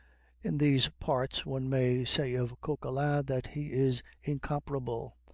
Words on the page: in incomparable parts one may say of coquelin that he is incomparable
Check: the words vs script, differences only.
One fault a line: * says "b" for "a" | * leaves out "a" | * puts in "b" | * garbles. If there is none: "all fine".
* says "these" for "incomparable"